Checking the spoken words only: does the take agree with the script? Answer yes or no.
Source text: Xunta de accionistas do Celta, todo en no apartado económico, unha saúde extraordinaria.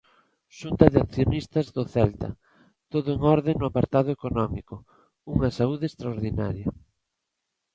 no